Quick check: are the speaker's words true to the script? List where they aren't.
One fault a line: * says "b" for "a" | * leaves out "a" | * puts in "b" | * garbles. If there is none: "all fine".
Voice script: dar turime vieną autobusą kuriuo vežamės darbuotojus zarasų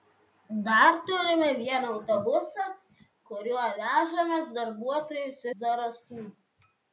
all fine